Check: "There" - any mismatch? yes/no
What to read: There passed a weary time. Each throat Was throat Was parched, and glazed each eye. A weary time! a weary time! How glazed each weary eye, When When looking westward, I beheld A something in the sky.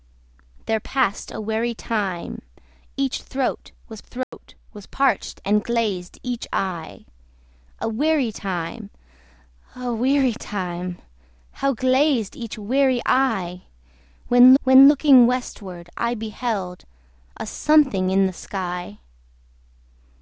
no